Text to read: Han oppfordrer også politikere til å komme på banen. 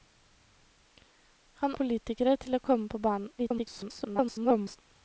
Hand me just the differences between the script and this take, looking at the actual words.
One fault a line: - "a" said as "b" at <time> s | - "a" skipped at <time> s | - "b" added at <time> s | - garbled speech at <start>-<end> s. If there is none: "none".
- "oppfordrer også" skipped at 1.8 s
- garbled speech at 3.4-4.8 s